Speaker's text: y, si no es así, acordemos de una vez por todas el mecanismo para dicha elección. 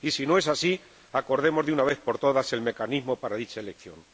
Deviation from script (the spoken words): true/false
false